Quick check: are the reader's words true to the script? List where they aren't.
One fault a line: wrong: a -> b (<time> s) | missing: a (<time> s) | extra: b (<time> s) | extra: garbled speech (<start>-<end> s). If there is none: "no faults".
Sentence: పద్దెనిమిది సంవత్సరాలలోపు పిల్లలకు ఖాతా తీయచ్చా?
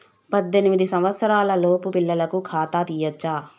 no faults